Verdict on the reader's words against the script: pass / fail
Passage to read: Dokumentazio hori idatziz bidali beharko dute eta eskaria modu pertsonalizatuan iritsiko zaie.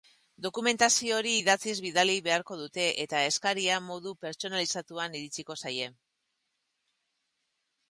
pass